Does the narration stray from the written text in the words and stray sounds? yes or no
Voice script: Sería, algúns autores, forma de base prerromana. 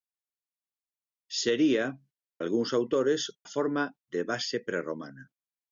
no